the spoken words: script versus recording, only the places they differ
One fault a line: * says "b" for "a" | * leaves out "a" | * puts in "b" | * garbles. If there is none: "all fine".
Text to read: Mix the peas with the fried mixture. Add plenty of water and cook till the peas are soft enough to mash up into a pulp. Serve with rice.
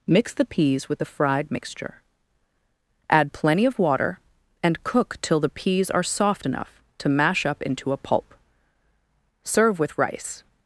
all fine